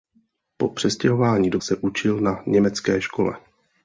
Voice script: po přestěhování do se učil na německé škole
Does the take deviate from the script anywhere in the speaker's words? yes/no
no